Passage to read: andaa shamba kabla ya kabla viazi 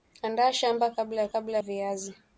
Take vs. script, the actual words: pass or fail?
pass